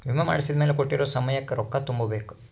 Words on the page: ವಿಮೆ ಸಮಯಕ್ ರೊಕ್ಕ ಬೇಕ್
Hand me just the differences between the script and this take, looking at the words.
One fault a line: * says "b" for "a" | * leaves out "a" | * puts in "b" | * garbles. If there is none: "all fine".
* puts in "ಮಾಡ್ಸಿದ್ಮೆಲೆ ಕೋಟ್ಟಿರೊ"
* puts in "ತುಂಬ"